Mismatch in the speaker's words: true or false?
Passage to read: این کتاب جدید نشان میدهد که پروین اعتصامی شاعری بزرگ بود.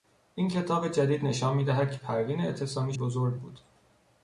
true